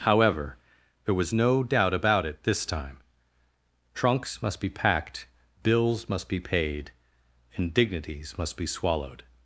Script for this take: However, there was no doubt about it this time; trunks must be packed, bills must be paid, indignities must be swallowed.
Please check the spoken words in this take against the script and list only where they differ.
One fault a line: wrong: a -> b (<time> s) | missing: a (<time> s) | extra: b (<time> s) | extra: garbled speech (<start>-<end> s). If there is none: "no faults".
no faults